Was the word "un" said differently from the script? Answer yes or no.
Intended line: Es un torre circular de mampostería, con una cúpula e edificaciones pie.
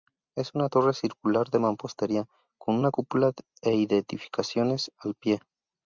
yes